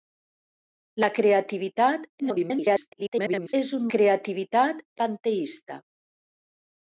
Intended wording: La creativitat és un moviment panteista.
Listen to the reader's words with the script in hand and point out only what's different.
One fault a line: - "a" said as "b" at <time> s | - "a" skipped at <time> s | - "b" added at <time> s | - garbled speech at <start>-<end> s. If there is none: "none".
- garbled speech at 2.2-3.5 s
- "moviment" said as "creativitat" at 3.9 s